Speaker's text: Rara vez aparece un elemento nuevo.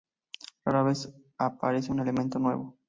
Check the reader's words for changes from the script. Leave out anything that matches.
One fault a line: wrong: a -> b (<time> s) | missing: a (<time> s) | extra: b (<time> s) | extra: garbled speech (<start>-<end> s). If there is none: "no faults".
no faults